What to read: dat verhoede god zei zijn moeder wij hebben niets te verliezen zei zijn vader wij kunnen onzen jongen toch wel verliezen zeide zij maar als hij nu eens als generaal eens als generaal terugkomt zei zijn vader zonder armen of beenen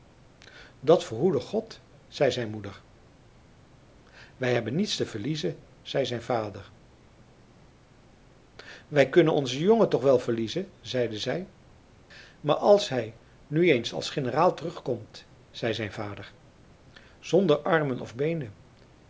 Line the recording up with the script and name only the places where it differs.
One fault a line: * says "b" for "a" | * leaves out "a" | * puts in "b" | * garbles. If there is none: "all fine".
* leaves out "eens als generaal"